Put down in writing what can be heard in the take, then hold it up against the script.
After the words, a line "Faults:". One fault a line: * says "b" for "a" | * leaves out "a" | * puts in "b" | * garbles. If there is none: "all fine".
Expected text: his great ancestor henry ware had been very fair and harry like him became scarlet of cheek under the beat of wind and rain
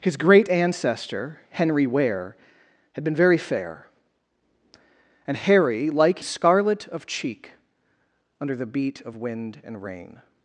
his great ancestor henry ware had been very fair and harry like scarlet of cheek under the beat of wind and rain
Faults:
* leaves out "him became"